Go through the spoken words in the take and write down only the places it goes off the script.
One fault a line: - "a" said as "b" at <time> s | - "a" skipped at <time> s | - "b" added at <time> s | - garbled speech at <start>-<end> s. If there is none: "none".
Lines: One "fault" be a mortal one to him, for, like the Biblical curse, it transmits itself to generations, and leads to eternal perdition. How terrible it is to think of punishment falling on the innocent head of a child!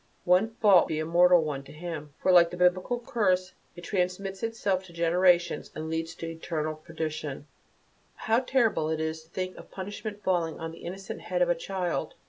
none